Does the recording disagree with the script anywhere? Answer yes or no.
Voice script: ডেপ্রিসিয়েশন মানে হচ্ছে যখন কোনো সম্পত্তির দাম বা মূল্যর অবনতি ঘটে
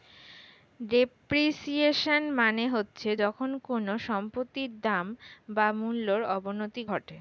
no